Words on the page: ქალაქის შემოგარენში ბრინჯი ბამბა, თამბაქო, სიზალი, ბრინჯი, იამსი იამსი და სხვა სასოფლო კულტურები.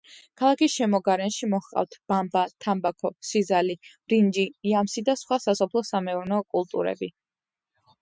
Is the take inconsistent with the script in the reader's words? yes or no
yes